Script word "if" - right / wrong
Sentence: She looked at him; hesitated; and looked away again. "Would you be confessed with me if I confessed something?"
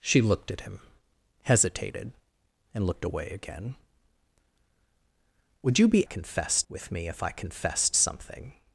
right